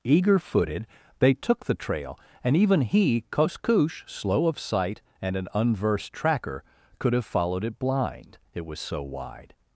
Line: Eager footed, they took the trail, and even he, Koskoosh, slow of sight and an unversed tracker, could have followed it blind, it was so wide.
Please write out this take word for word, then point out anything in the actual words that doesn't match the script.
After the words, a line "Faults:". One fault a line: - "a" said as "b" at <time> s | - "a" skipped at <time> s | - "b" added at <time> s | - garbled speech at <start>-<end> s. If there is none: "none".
Eager footed, they took the trail, and even he, Koskoosh, slow of sight and an unversed tracker, could have followed it blind, it was so wide.
Faults:
none